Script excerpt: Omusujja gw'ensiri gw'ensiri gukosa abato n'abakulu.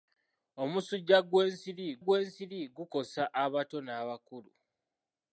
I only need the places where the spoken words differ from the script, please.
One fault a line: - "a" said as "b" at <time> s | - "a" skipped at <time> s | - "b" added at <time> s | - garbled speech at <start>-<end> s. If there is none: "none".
none